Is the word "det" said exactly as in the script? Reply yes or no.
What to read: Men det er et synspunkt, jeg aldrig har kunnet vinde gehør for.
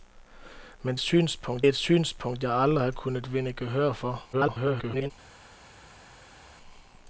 no